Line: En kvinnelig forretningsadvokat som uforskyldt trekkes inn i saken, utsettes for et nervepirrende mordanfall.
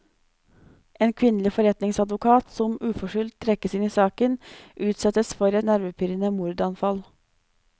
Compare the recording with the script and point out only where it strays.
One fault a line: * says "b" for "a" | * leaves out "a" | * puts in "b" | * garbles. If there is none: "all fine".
* leaves out "et"